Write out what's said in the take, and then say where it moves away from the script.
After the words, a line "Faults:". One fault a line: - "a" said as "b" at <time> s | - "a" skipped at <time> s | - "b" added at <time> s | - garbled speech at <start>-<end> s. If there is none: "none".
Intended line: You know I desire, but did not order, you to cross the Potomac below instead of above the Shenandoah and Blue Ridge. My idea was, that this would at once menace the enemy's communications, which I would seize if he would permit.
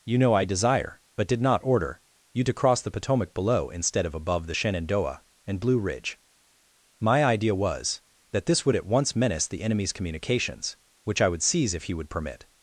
You know I desire, but did not order, you to cross the Potomac below instead of above the Shenandoah and Blue Ridge. My idea was, that this would at once menace the enemy's communications, which I would seize if he would permit.
Faults:
none